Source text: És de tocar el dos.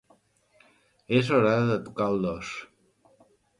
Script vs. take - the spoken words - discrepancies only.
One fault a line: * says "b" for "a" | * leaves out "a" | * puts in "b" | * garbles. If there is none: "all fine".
* puts in "hora"